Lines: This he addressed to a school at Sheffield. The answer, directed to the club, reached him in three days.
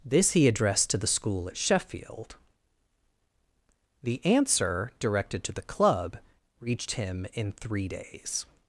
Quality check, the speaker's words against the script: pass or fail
fail